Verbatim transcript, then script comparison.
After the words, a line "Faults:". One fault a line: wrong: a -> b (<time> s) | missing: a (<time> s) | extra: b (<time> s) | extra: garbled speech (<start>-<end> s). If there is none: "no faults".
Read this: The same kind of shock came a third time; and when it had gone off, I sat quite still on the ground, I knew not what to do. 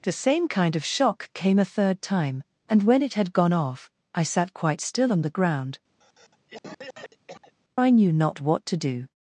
The same kind of shock came a third time; and when it had gone off, I sat quite still on the ground, I knew not what to do.
Faults:
no faults